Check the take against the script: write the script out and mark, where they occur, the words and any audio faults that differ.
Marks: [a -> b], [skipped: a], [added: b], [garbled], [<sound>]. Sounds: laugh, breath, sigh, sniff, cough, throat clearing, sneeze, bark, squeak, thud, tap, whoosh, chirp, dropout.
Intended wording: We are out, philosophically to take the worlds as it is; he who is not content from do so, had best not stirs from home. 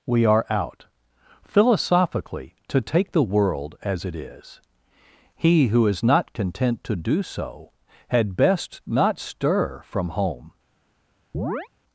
We are out, philosophically to take the [worlds -> world] as it is; he who is not content [from -> to] do so, had best not [stirs -> stir] from home. [chirp]